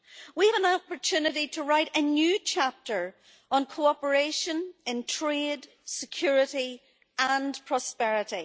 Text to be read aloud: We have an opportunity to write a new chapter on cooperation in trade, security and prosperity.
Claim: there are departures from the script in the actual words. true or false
true